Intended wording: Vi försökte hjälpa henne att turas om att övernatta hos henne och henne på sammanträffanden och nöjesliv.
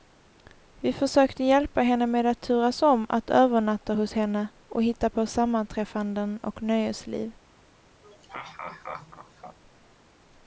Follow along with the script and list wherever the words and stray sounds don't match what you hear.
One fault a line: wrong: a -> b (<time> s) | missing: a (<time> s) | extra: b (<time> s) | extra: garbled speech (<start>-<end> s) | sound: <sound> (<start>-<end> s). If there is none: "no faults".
extra: med (2.1 s)
wrong: henne -> hitta (4.8 s)
sound: laugh (8.0-9.6 s)